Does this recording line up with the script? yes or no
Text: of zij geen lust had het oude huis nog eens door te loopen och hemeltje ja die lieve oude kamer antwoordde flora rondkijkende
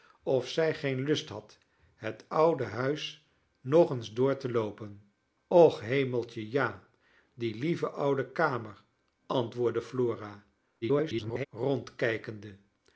no